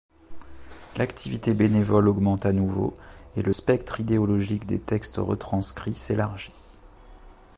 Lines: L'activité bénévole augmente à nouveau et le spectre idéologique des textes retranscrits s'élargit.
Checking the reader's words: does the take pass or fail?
pass